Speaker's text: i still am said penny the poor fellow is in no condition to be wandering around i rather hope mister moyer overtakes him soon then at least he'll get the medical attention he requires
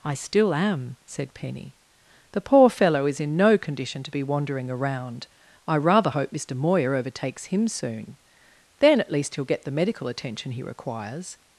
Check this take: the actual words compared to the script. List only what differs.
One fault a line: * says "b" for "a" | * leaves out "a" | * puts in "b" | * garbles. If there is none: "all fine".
all fine